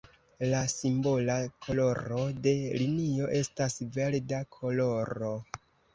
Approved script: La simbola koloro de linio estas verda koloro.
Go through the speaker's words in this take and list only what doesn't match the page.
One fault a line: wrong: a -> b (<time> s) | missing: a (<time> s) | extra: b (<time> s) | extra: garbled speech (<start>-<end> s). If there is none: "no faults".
no faults